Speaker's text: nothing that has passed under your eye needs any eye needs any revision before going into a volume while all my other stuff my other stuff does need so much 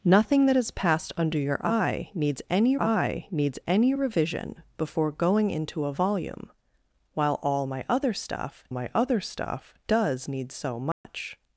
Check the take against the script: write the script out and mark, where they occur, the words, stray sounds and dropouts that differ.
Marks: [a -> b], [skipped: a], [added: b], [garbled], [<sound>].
nothing that has passed under your eye needs any eye needs any revision before going into a volume while all my other stuff my other stuff does need so much [dropout]